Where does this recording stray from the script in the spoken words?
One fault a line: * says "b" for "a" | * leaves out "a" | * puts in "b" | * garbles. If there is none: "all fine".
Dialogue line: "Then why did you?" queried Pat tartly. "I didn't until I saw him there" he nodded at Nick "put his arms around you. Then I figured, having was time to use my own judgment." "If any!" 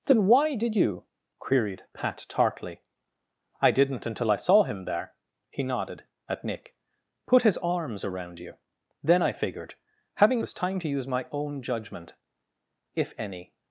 all fine